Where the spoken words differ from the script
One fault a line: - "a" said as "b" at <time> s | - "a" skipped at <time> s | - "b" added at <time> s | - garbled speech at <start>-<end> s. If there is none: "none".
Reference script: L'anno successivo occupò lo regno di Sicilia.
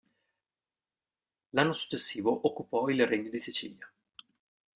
- "lo" said as "il" at 2.9 s